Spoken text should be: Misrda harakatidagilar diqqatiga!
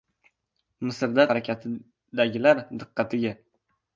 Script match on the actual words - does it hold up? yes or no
yes